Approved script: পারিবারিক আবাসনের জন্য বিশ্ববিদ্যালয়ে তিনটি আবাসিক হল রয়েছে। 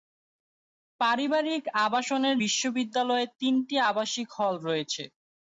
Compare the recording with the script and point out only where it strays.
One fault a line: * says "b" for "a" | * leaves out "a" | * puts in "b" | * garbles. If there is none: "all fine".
* leaves out "জন্য"